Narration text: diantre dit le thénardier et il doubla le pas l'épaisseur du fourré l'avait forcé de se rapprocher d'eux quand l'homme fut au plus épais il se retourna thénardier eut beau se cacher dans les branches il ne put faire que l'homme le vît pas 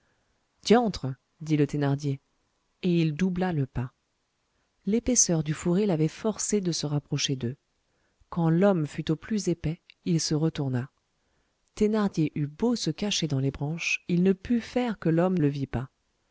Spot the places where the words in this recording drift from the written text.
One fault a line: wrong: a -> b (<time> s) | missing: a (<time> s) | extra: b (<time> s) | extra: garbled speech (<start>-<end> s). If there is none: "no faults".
no faults